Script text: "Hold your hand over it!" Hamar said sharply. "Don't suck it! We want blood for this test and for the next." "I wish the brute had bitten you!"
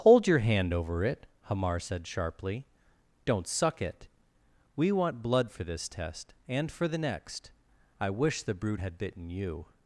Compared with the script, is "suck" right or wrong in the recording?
right